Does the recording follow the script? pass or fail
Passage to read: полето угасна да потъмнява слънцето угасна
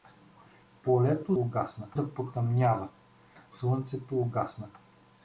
pass